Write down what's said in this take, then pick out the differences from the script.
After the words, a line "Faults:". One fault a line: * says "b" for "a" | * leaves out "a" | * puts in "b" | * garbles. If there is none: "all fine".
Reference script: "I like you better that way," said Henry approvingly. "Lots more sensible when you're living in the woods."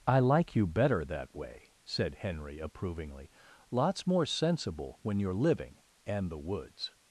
"I like you better that way," said Henry approvingly. "Lots more sensible when you're living and the woods."
Faults:
* says "and" for "in"